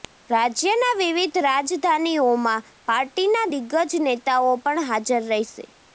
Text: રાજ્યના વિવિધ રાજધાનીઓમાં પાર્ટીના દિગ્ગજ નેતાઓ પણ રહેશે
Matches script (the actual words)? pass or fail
fail